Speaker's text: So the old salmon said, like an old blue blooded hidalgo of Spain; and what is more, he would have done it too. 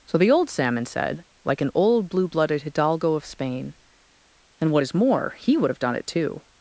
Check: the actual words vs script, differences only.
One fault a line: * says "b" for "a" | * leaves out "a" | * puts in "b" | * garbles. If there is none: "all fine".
all fine